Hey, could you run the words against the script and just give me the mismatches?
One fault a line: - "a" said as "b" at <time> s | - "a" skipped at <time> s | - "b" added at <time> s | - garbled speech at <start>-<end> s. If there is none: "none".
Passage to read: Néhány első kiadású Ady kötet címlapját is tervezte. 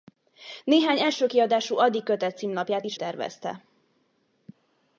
none